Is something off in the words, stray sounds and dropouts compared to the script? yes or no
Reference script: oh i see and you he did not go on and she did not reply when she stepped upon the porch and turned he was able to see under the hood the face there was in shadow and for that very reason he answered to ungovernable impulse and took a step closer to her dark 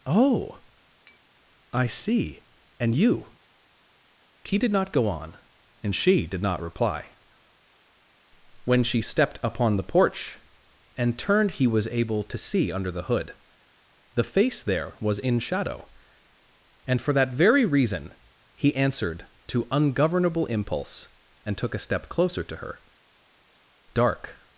yes